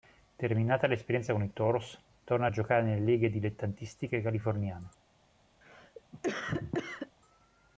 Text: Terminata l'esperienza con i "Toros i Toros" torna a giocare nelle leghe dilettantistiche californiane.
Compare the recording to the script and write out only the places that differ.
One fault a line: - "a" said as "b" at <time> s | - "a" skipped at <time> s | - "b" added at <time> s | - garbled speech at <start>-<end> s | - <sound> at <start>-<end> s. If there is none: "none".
- "i Toros" skipped at 1.9 s
- cough at 5.6-7.1 s